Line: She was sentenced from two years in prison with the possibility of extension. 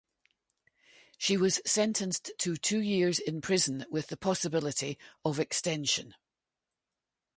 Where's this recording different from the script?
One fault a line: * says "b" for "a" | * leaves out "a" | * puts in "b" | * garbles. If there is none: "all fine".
* says "to" for "from"